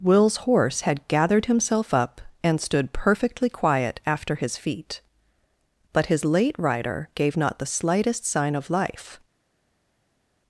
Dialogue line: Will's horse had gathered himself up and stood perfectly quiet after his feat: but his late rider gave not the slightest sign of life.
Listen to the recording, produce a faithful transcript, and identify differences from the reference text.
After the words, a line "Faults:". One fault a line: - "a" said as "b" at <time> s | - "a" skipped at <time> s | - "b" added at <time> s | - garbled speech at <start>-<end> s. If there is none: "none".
Will's horse had gathered himself up and stood perfectly quiet after his feat: but his late rider gave not the slightest sign of life.
Faults:
none